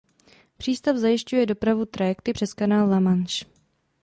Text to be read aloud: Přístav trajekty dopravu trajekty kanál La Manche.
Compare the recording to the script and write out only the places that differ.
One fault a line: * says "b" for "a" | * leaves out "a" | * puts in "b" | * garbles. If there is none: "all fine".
* says "zajišťuje" for "trajekty"
* puts in "přes"